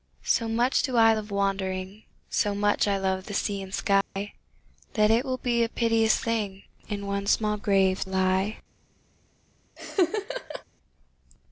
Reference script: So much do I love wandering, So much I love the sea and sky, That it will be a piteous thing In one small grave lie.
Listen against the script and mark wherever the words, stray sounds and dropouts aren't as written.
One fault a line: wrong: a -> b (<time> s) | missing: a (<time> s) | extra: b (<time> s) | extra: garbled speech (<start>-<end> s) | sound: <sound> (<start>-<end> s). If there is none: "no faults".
sound: dropout (4.0-4.2 s)
sound: laugh (9.8-10.6 s)